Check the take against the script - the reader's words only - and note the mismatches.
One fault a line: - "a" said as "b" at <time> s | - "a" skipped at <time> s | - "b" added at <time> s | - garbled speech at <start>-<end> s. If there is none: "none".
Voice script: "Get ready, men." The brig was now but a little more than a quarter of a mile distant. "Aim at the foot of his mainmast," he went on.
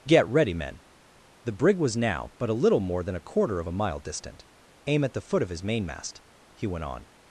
none